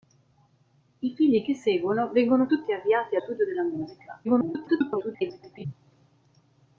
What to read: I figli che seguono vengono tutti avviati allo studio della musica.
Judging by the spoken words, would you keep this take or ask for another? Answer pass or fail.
fail